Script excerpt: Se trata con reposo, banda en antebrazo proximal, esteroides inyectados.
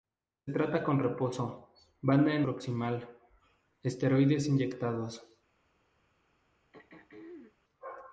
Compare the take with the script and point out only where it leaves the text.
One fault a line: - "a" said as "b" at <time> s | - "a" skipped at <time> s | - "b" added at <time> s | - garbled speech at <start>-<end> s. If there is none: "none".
- "antebrazo" skipped at 2.5 s